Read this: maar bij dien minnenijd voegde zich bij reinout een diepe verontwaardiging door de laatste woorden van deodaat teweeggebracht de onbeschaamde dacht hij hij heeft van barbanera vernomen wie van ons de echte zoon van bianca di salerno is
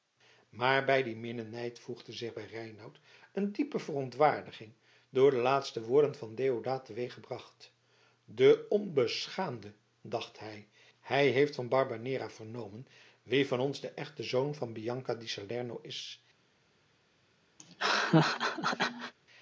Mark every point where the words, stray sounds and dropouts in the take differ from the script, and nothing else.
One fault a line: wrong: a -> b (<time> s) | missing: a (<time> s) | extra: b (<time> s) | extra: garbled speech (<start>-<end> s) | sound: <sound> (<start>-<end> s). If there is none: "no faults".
sound: laugh (17.6-19.1 s)